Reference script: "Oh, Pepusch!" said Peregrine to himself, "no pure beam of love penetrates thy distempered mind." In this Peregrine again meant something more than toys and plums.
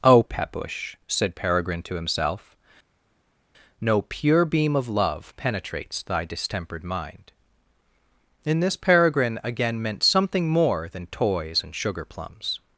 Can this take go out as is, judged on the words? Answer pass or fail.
fail